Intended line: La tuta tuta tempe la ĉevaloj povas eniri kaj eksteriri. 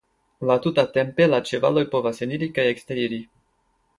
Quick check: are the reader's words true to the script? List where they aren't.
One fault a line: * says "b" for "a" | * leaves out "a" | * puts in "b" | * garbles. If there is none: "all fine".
* leaves out "tuta"